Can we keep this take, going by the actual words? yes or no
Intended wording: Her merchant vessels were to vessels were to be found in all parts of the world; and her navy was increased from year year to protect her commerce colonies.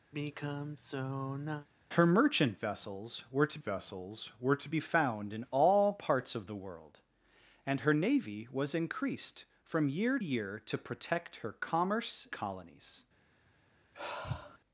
yes